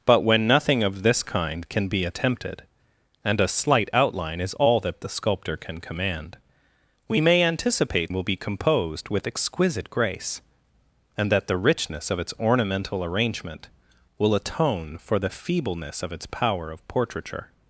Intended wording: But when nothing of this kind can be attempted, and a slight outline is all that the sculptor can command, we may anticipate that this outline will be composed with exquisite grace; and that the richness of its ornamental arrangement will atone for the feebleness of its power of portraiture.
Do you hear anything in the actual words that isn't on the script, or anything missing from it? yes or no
yes